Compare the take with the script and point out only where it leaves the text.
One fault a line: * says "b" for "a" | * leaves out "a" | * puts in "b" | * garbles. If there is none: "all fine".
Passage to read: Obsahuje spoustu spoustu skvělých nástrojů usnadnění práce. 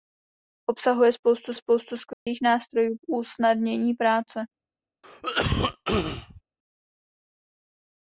all fine